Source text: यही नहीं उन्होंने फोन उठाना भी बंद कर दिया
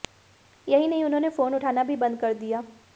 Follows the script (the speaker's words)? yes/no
yes